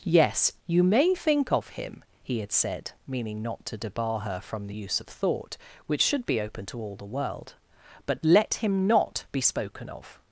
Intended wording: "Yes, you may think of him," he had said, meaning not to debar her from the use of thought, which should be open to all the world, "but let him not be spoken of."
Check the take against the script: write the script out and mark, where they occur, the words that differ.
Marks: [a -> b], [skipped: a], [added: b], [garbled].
"Yes, you may think of him," he had said, meaning not to debar her from the use of thought, which should be open to all the world, "but let him not be spoken of."